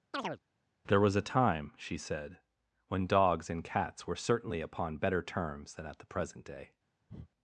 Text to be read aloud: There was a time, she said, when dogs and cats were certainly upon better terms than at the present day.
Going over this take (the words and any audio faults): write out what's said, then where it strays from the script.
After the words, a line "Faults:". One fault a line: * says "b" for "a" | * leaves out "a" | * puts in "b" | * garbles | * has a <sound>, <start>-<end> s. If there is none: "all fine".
There was a time, she said, when dogs and cats were certainly upon better terms than at the present day.
Faults:
* has a chirp, 0.1-0.4 s
* has a breath, 7.1-7.3 s